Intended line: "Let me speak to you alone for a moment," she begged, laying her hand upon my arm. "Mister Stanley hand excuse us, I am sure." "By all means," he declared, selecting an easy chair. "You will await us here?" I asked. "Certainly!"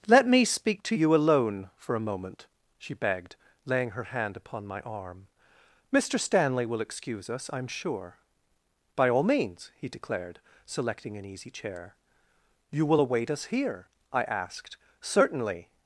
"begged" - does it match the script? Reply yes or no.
yes